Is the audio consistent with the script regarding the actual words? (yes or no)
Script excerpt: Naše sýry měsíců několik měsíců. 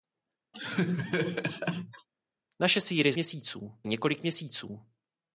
yes